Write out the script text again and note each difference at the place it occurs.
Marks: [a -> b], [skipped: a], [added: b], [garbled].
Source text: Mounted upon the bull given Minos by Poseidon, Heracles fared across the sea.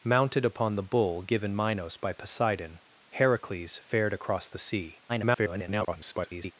Mounted upon the bull given Minos by Poseidon, Heracles fared across the sea. [garbled]